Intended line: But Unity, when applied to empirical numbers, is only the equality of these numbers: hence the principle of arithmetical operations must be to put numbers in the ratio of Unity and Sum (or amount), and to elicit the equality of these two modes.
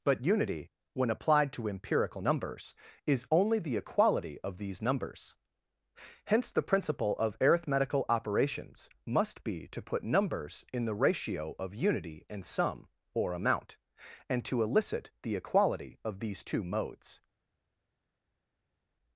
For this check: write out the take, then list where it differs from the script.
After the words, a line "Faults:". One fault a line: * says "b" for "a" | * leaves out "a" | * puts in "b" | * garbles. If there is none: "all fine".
But Unity, when applied to empirical numbers, is only the equality of these numbers: hence the principle of arithmetical operations must be to put numbers in the ratio of Unity and Sum (or amount), and to elicit the equality of these two modes.
Faults:
all fine